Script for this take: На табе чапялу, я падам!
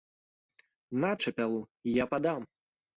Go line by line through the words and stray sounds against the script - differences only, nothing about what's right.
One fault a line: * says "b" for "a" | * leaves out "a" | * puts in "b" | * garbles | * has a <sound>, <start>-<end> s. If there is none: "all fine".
* leaves out "табе"